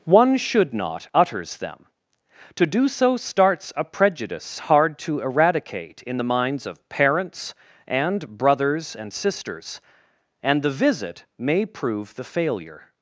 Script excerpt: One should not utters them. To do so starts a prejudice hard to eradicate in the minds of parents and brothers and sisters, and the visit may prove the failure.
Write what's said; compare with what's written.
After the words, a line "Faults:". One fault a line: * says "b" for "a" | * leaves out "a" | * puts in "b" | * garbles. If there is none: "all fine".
One should not utters them. To do so starts a prejudice hard to eradicate in the minds of parents and brothers and sisters, and the visit may prove the failure.
Faults:
all fine